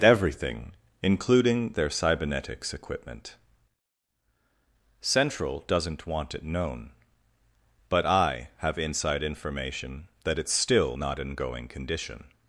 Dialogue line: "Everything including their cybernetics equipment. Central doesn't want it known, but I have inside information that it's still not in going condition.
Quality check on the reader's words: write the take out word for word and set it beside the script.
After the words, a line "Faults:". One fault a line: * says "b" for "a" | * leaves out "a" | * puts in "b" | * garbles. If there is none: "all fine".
"Everything including their cybernetics equipment. Central doesn't want it known, but I have inside information that it's still not in going condition.
Faults:
all fine